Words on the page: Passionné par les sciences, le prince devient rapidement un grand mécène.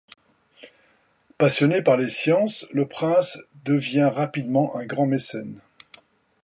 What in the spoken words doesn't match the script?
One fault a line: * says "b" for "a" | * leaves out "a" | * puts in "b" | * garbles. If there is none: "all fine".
all fine